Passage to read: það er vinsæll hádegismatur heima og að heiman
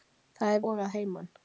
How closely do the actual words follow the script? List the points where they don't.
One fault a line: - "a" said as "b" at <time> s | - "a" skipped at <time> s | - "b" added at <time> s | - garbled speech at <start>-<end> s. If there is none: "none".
- "vinsæll hádegismatur heima" skipped at 0.6 s